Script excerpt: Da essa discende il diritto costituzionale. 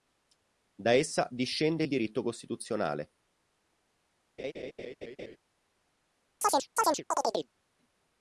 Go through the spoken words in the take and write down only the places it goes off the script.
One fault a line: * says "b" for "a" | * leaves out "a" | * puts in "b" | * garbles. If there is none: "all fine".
all fine